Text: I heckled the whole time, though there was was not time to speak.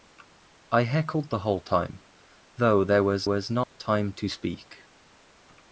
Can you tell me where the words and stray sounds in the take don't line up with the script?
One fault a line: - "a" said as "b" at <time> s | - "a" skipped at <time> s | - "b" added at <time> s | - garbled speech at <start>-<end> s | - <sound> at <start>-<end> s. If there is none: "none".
- dropout at 3.6-3.7 s